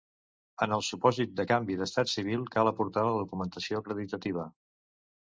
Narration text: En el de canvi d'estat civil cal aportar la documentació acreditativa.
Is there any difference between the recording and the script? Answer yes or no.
yes